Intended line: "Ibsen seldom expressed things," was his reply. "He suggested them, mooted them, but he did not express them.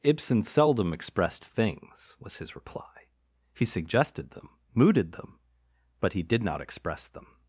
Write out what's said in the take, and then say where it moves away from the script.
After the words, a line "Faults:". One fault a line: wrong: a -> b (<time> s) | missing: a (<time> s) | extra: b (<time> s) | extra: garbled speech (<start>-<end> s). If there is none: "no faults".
"Ibsen seldom expressed things," was his reply. "He suggested them, mooted them, but he did not express them.
Faults:
no faults